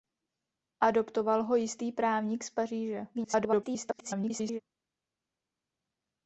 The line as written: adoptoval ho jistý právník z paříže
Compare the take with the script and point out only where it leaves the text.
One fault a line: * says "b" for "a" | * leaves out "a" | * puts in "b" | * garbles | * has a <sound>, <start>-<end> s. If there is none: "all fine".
* garbles